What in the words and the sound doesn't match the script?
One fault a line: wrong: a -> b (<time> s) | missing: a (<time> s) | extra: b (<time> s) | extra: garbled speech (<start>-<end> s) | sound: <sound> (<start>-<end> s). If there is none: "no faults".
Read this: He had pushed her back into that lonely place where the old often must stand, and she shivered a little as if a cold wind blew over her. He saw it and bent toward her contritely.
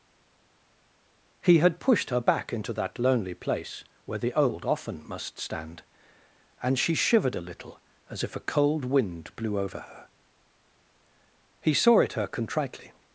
missing: and bent toward (12.1 s)